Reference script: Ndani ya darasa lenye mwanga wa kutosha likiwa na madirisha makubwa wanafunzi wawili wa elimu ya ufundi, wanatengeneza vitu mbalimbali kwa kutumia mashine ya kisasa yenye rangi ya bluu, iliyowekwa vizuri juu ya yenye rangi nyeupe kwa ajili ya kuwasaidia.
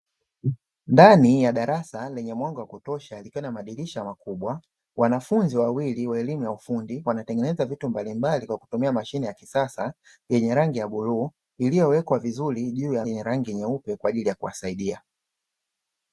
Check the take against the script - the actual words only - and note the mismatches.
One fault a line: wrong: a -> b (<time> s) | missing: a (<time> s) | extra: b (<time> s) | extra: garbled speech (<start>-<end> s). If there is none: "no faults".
no faults